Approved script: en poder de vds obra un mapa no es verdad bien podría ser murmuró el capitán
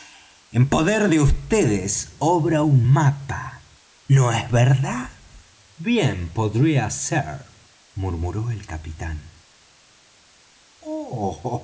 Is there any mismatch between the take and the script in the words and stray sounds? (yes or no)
no